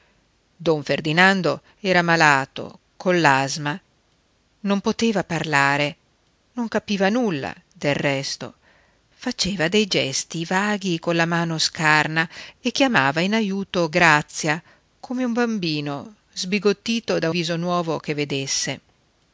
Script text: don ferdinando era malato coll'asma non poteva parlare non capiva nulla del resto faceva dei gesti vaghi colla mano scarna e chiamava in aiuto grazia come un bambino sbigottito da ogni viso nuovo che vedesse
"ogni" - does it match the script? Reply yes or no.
no